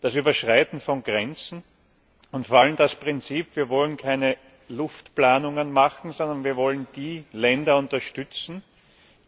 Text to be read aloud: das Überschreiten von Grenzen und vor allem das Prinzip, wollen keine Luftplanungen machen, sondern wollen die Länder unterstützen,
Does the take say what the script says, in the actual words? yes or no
no